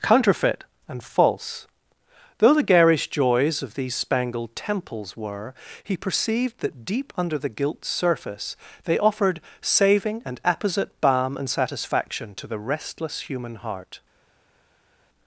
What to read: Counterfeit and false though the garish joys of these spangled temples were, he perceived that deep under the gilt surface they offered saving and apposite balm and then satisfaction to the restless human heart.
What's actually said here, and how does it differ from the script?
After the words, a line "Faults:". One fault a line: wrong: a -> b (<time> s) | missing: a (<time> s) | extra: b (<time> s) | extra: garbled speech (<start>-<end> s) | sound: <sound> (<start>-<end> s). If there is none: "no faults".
Counterfeit and false though the garish joys of these spangled temples were, he perceived that deep under the gilt surface they offered saving and apposite balm and satisfaction to the restless human heart.
Faults:
missing: then (11.5 s)